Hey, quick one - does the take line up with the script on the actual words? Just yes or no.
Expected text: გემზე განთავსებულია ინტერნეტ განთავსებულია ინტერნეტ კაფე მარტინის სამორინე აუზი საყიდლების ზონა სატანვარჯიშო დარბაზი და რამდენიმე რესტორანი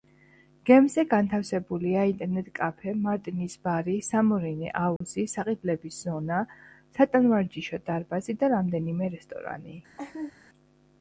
no